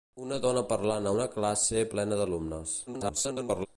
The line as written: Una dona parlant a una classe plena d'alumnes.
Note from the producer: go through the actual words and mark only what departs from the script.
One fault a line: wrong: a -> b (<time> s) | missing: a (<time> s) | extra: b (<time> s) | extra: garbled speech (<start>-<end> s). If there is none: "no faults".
extra: garbled speech (2.9-3.7 s)